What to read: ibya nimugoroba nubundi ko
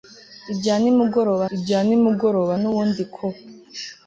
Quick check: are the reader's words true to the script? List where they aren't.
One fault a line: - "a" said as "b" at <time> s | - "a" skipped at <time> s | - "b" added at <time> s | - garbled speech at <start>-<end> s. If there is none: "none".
- "ibya nimugoroba" added at 1.5 s